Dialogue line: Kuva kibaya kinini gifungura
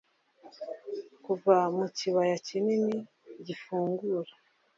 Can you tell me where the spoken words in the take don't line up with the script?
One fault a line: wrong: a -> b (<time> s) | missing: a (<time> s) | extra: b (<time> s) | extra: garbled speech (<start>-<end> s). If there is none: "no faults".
extra: mu (1.8 s)